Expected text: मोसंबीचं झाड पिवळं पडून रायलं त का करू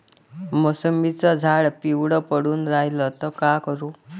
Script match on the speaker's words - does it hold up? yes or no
yes